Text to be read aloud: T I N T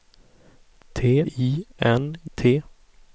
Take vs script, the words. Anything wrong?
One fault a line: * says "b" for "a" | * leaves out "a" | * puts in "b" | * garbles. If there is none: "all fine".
all fine